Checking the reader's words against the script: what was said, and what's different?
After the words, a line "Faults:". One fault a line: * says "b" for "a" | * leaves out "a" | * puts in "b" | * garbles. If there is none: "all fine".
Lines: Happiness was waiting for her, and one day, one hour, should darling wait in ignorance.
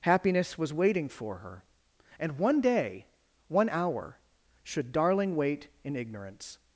Happiness was waiting for her, and one day, one hour, should darling wait in ignorance.
Faults:
all fine